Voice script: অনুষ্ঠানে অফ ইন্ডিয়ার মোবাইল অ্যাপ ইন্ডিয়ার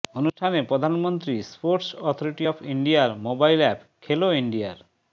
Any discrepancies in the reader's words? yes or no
yes